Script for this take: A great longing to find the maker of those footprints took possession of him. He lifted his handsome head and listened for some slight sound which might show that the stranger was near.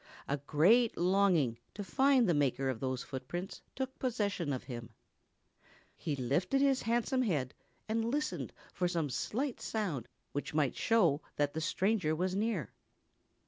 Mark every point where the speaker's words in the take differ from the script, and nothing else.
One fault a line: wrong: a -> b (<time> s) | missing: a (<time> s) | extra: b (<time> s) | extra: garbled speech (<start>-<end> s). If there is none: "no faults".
no faults